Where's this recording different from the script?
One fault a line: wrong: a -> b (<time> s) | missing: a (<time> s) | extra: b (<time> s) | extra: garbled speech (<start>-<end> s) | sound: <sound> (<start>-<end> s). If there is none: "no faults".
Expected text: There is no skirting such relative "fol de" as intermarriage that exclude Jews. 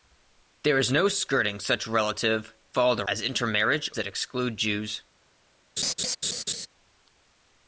sound: laugh (5.8-6.7 s)